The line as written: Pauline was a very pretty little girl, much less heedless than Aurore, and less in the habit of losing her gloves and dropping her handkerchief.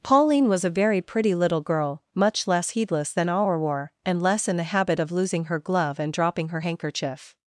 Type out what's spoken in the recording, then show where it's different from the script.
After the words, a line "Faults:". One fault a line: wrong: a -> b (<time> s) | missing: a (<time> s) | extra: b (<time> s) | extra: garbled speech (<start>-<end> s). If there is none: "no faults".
Pauline was a very pretty little girl, much less heedless than Aurore, and less in the habit of losing her glove and dropping her handkerchief.
Faults:
wrong: gloves -> glove (5.6 s)